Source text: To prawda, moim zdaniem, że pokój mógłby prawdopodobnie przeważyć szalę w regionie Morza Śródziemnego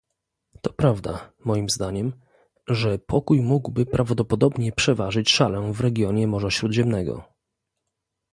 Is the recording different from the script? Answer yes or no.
no